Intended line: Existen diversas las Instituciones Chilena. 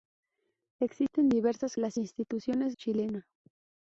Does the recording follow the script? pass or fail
pass